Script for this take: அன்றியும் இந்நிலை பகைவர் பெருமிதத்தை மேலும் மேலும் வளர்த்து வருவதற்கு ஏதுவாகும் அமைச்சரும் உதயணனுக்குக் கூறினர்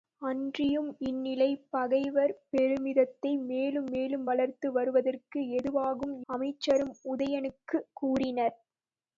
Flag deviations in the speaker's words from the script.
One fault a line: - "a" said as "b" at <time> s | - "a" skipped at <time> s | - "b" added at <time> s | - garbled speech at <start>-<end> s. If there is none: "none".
none